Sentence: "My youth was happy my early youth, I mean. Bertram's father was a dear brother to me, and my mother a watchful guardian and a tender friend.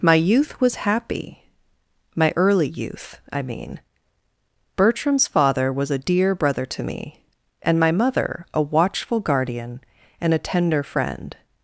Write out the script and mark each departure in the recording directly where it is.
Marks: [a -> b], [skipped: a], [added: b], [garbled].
"My youth was happy my early youth, I mean. Bertram's father was a dear brother to me, and my mother a watchful guardian and a tender friend.